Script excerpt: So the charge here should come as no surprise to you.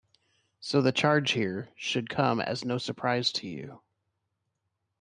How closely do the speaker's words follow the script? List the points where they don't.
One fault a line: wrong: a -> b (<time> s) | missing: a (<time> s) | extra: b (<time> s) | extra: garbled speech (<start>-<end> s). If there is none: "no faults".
no faults